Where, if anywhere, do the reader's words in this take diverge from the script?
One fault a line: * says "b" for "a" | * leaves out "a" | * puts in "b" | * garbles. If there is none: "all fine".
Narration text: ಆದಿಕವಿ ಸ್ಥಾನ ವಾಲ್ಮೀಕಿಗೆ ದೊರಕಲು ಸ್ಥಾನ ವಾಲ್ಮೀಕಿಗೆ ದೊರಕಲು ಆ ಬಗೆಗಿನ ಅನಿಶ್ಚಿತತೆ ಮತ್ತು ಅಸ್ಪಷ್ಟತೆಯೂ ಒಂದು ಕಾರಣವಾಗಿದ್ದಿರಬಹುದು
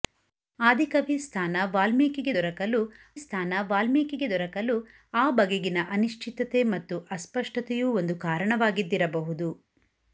all fine